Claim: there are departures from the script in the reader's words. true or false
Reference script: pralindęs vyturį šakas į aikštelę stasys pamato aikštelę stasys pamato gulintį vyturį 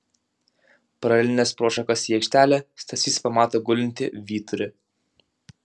true